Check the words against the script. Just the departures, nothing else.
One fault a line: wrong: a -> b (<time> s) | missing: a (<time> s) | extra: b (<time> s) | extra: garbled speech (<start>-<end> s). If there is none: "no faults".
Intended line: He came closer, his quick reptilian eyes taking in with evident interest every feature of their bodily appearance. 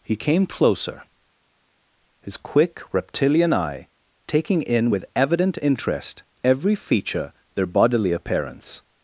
wrong: eyes -> eye (3.5 s)
missing: of (7.3 s)